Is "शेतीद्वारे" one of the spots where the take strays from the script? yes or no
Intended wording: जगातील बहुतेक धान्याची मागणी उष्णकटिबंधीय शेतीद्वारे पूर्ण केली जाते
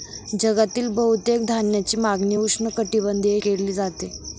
yes